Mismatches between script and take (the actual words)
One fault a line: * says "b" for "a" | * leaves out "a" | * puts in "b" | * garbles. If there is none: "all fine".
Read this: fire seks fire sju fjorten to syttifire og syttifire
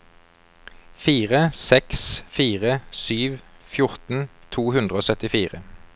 * says "hundre" for "syttifire"